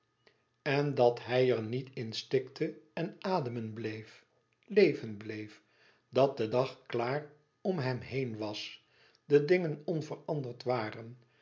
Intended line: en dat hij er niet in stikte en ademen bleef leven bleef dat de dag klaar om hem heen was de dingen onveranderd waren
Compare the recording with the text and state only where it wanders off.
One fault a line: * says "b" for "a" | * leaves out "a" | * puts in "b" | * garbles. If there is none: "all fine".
all fine